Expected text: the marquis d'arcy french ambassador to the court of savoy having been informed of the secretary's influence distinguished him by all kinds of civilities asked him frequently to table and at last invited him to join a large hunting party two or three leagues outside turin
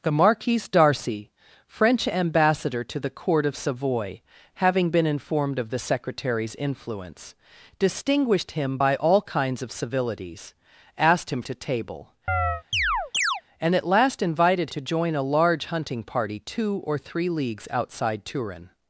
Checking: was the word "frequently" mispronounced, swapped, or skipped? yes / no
yes